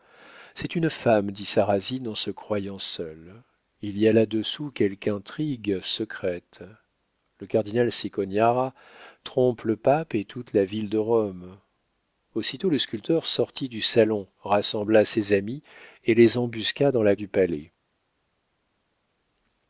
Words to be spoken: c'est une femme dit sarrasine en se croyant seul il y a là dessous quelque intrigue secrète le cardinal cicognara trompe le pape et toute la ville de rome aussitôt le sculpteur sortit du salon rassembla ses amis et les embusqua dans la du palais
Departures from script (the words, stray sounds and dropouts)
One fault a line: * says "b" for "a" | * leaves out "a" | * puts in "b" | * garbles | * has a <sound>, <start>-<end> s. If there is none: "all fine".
all fine